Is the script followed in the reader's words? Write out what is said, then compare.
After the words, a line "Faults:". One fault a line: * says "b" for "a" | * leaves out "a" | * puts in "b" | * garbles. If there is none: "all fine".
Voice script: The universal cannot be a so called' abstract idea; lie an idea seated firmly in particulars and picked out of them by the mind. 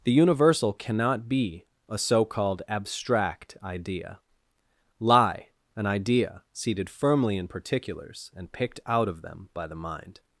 The universal cannot be a so called' abstract idea; lie an idea seated firmly in particulars and picked out of them by the mind.
Faults:
all fine